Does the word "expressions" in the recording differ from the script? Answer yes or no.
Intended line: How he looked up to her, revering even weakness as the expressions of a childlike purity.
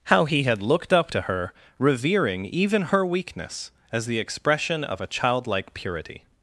yes